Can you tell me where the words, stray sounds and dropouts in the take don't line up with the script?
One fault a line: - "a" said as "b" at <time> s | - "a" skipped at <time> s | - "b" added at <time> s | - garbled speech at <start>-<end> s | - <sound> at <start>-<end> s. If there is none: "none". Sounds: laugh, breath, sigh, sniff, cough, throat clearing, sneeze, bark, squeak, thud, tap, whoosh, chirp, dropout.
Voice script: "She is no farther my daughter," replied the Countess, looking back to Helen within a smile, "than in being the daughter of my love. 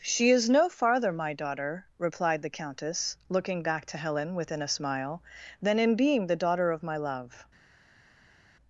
none